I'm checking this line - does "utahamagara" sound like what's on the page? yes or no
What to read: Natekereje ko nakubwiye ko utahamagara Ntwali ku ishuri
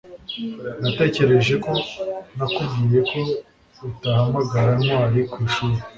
yes